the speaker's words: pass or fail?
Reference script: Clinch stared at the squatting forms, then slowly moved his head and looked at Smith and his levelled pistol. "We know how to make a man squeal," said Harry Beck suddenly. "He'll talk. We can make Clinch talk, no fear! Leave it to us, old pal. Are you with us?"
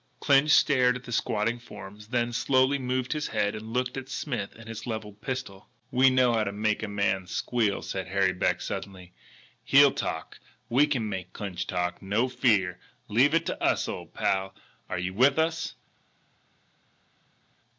pass